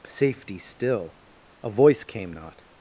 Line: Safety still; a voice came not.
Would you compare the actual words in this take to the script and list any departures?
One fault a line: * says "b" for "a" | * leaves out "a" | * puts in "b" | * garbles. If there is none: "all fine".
all fine